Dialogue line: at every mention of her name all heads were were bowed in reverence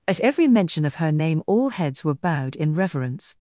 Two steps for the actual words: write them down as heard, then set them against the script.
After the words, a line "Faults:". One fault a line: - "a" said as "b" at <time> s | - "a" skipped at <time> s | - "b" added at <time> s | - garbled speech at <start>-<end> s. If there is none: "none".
at every mention of her name all heads were bowed in reverence
Faults:
- "were" skipped at 2.1 s